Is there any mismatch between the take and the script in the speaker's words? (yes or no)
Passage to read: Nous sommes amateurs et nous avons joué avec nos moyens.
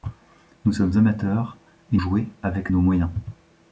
yes